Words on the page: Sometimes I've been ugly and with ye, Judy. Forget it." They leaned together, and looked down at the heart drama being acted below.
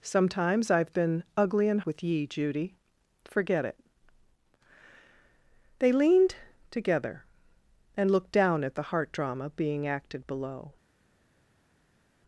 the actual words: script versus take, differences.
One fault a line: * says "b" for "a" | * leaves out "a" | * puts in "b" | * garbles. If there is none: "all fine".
all fine